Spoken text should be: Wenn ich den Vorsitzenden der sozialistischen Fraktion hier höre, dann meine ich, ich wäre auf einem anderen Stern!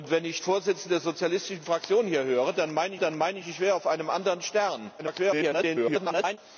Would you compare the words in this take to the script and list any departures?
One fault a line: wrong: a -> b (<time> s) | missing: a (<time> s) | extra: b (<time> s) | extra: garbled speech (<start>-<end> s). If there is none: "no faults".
missing: den (0.4 s)
extra: dann meine (3.0 s)
extra: garbled speech (5.0-6.4 s)